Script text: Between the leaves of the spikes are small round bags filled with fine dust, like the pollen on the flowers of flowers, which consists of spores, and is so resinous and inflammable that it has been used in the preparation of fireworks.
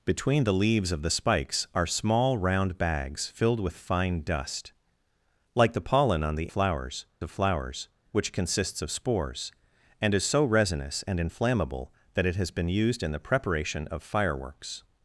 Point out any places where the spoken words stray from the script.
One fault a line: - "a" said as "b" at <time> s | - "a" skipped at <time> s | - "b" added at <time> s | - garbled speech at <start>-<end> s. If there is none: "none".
none